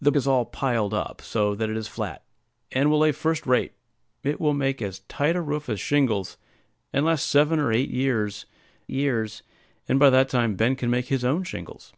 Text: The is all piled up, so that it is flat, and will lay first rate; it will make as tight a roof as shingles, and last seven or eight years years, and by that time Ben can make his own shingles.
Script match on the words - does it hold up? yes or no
yes